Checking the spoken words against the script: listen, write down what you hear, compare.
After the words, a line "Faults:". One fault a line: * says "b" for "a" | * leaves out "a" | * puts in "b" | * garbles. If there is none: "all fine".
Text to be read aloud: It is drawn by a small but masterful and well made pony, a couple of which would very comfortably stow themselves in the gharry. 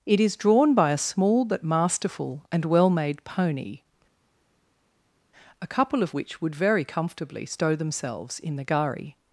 It is drawn by a small but masterful and well made pony, a couple of which would very comfortably stow themselves in the gharry.
Faults:
all fine